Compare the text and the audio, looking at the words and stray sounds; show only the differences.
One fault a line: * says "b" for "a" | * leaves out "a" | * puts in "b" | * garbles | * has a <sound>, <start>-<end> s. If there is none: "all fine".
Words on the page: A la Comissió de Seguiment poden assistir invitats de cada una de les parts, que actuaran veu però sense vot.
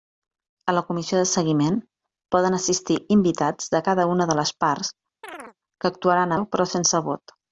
* has a chirp, 5.2-5.6 s